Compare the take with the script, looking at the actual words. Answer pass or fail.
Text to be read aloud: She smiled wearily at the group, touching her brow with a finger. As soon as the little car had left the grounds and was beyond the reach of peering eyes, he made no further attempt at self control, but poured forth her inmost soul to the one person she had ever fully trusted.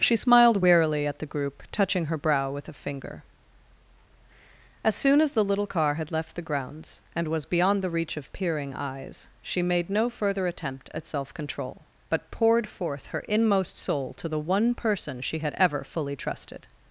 fail